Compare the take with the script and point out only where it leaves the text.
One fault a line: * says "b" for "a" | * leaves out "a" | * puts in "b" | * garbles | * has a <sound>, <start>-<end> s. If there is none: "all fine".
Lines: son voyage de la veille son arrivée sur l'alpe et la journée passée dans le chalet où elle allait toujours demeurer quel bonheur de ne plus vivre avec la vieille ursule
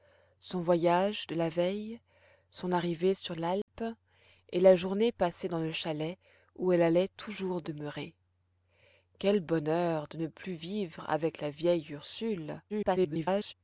* has a dropout, 3.6-3.7 s
* garbles